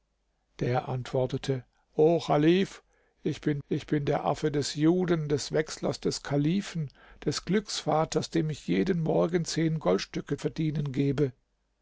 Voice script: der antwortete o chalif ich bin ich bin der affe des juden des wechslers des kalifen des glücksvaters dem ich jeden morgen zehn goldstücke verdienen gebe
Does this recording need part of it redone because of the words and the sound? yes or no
no